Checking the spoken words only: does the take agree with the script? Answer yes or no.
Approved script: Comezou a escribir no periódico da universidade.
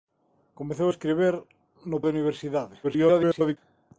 no